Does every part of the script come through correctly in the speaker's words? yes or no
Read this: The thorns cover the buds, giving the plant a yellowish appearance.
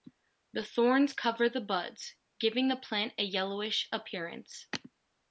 yes